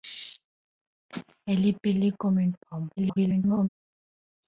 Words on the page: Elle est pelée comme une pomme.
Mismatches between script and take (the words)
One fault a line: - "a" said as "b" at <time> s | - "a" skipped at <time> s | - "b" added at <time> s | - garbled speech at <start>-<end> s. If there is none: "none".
- garbled speech at 3.0-3.7 s